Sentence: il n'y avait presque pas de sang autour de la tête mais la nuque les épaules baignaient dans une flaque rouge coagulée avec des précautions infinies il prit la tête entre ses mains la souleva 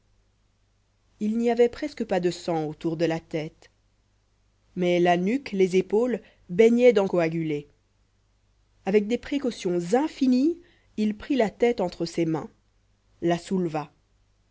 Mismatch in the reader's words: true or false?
true